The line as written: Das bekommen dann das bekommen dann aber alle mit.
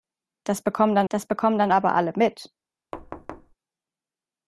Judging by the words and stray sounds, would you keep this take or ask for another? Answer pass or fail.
fail